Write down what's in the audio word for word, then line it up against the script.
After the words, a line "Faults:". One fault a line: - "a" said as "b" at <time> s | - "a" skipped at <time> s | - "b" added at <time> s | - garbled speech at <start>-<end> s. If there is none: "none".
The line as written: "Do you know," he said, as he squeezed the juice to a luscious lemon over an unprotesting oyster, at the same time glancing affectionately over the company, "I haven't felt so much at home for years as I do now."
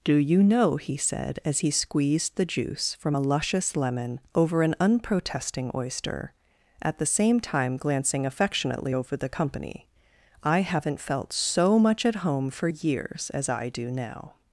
"Do you know," he said, as he squeezed the juice from a luscious lemon over an unprotesting oyster, at the same time glancing affectionately over the company, "I haven't felt so much at home for years as I do now."
Faults:
- "to" said as "from" at 3.0 s